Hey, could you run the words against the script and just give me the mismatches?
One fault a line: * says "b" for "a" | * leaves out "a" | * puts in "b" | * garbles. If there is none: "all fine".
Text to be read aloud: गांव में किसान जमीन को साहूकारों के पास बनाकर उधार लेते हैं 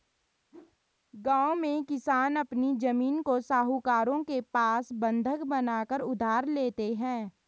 * puts in "अपनी"
* puts in "बंधक"